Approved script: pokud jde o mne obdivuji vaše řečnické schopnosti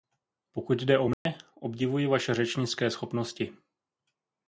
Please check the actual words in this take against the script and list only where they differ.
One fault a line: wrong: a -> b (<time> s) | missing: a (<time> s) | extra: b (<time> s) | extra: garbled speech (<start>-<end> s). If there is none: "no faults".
no faults